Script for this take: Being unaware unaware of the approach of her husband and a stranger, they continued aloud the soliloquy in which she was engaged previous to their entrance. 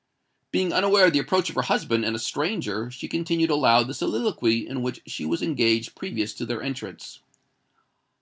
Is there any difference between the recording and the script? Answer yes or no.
yes